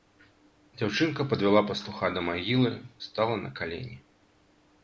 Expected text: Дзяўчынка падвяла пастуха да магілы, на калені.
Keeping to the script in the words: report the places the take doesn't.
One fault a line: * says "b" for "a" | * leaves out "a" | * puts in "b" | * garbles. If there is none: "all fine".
* puts in "стала"